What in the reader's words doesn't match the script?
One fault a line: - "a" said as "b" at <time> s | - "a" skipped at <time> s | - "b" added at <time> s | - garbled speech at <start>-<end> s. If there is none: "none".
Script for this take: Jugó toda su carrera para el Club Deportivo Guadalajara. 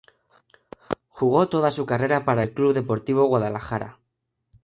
none